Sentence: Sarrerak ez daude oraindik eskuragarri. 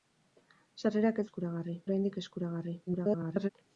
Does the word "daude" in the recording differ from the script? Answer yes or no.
yes